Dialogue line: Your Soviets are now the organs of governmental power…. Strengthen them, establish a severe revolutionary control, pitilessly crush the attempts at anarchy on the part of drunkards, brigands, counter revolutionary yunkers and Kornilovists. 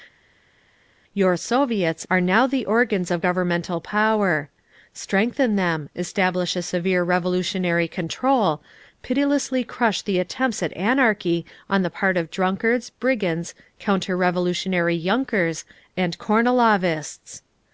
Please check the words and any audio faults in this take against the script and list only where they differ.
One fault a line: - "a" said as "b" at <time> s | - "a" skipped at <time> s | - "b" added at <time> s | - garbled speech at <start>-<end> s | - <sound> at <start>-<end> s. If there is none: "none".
none